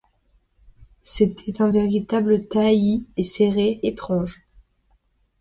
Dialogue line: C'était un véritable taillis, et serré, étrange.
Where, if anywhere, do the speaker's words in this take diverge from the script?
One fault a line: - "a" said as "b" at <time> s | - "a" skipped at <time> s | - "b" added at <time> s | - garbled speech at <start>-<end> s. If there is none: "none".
none